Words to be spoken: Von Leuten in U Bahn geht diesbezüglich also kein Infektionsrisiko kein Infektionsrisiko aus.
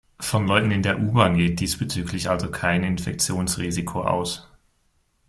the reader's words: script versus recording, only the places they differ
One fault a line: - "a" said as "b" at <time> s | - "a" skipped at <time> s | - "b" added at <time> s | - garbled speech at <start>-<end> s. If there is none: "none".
- "der" added at 0.8 s
- "kein Infektionsrisiko" skipped at 4.0 s